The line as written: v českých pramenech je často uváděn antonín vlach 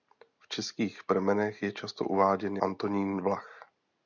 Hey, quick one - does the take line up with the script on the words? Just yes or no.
yes